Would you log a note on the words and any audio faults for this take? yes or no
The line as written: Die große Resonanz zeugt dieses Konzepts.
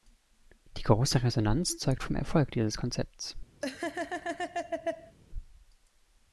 yes